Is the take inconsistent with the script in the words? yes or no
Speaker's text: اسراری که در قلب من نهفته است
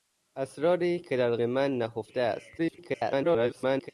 yes